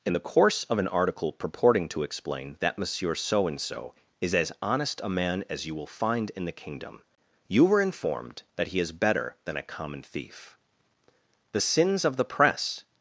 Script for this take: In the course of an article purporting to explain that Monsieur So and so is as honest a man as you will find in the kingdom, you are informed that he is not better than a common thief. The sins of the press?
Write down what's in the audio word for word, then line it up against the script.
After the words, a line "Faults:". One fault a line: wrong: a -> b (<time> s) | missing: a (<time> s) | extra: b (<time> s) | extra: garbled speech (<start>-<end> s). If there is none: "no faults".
In the course of an article purporting to explain that Monsieur So and so is as honest a man as you will find in the kingdom, you were informed that he is better than a common thief. The sins of the press?
Faults:
wrong: are -> were (7.6 s)
missing: not (8.9 s)